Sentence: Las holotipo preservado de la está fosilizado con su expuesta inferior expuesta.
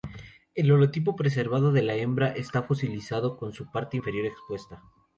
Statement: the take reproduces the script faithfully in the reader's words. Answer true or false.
false